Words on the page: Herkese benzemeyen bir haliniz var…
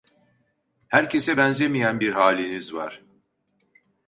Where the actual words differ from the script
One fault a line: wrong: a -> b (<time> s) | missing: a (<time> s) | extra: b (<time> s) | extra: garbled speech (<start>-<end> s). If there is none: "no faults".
no faults